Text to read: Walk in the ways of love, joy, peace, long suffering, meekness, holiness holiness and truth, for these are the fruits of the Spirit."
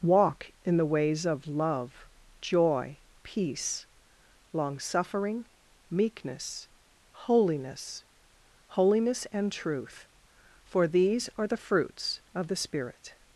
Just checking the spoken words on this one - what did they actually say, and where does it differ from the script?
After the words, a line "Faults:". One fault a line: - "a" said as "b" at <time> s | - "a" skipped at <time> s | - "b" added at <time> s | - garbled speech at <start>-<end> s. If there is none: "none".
Walk in the ways of love, joy, peace, long suffering, meekness, holiness holiness and truth, for these are the fruits of the Spirit."
Faults:
none